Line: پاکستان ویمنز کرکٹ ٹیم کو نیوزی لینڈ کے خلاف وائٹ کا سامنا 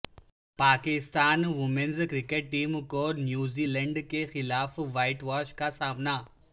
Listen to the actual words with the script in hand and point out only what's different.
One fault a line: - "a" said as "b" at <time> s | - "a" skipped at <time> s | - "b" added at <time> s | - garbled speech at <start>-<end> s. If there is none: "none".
- "واش" added at 5.2 s